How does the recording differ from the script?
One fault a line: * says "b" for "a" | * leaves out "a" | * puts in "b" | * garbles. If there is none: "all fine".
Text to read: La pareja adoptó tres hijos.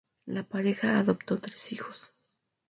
all fine